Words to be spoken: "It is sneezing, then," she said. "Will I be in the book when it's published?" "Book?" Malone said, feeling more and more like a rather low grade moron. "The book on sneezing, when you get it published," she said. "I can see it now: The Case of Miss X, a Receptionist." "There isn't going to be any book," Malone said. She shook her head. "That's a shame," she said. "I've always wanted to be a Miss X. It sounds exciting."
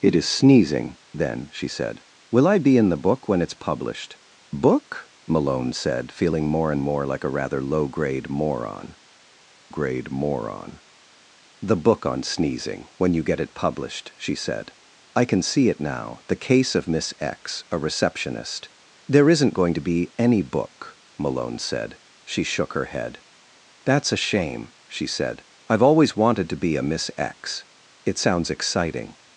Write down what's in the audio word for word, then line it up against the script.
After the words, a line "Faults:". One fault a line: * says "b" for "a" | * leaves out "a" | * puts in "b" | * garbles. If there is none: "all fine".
"It is sneezing, then," she said. "Will I be in the book when it's published?" "Book?" Malone said, feeling more and more like a rather low grade moron grade moron. "The book on sneezing, when you get it published," she said. "I can see it now: The Case of Miss X, a Receptionist." "There isn't going to be any book," Malone said. She shook her head. "That's a shame," she said. "I've always wanted to be a Miss X. It sounds exciting."
Faults:
* puts in "grade moron"